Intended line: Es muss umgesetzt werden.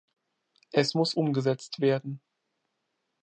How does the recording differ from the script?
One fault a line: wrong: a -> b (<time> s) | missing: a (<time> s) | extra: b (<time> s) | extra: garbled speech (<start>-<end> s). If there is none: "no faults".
no faults